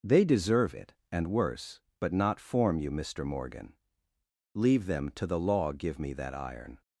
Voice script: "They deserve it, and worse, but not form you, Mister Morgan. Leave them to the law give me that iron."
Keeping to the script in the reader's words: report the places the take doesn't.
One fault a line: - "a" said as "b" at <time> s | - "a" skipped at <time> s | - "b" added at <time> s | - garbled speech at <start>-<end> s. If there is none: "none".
none